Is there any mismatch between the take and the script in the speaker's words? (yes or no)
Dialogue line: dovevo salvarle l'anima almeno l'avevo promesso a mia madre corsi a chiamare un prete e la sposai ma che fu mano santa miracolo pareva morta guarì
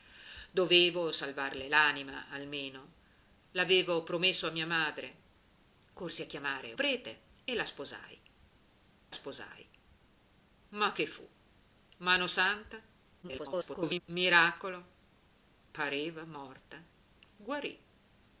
yes